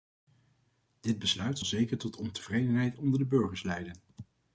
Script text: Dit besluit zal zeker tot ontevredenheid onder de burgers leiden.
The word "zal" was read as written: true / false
false